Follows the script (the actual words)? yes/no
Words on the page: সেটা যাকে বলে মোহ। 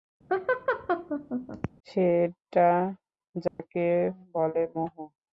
yes